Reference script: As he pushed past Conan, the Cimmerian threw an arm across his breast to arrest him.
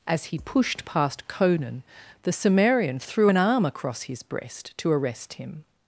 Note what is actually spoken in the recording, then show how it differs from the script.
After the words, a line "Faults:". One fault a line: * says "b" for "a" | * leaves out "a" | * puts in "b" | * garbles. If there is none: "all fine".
As he pushed past Conan, the Cimmerian threw an arm across his breast to arrest him.
Faults:
all fine